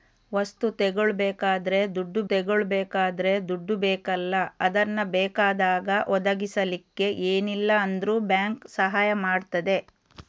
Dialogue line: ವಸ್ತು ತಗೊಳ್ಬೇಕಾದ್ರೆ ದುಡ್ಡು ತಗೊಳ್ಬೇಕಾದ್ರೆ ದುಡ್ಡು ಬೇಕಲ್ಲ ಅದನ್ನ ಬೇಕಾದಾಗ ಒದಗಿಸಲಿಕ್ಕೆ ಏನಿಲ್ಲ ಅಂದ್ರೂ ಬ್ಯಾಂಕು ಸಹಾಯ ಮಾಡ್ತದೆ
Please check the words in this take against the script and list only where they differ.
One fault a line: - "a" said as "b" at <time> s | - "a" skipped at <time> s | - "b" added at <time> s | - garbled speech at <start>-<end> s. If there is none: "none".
none